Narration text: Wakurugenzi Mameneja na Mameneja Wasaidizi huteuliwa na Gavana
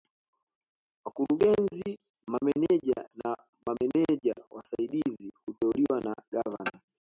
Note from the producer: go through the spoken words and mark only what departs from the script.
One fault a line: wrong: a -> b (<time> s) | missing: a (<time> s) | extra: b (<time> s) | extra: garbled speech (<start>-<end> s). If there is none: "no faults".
no faults